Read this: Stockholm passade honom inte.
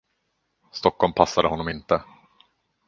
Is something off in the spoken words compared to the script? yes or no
no